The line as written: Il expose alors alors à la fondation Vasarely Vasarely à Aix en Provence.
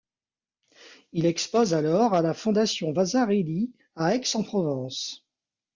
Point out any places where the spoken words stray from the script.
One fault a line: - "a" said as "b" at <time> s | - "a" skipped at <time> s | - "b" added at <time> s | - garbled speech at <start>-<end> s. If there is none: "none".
- "alors" skipped at 2.1 s
- "Vasarely" skipped at 3.7 s